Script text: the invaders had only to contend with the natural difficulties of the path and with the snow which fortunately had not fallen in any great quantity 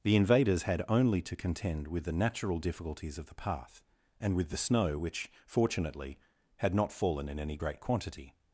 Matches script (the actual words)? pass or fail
pass